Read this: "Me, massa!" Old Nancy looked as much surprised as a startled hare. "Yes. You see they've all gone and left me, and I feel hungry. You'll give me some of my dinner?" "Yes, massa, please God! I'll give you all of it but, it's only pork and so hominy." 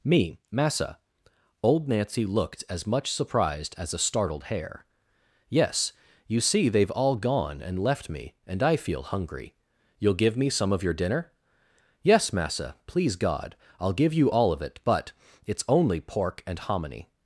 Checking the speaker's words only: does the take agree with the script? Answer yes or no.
no